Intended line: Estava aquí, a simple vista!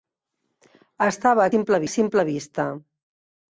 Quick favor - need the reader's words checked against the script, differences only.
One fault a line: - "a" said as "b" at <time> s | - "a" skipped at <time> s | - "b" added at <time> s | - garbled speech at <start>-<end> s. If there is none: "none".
- "aquí" said as "simple" at 1.5 s